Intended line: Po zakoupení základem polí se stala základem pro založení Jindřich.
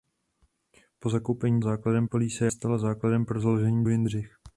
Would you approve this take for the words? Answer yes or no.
yes